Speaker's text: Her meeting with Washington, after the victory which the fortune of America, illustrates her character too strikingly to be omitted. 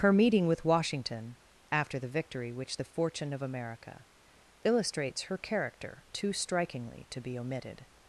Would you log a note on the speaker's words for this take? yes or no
no